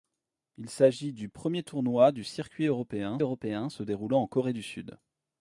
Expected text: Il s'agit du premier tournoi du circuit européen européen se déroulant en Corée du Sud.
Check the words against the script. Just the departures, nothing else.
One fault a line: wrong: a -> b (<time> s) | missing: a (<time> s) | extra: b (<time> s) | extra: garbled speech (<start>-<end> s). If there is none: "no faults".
no faults